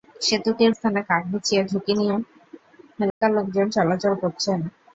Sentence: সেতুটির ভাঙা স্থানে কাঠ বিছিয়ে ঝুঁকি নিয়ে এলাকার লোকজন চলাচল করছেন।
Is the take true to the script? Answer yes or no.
no